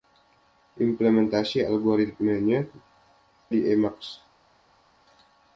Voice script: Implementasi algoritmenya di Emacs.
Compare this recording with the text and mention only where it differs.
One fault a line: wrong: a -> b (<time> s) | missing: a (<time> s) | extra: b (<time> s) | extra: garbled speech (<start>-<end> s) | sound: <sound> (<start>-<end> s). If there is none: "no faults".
no faults